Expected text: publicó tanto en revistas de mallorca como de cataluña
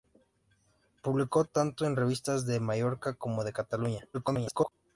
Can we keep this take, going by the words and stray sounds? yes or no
no